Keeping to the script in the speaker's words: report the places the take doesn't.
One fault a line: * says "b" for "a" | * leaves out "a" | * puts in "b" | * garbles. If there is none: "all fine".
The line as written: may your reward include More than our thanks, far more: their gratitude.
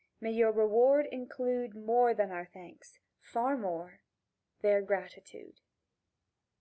all fine